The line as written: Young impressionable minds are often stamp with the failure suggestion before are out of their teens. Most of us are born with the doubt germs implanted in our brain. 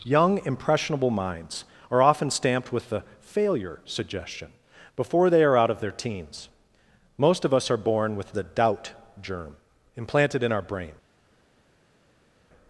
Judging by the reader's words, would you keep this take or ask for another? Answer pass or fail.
fail